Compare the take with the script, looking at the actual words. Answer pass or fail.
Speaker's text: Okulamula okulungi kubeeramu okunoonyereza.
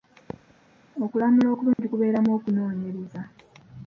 pass